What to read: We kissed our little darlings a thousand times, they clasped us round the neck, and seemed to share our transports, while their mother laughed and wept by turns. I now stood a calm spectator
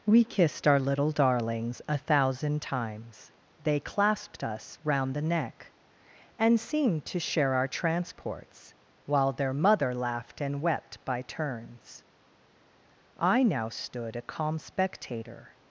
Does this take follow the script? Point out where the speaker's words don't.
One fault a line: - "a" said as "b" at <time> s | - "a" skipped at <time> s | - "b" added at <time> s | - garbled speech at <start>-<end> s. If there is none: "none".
none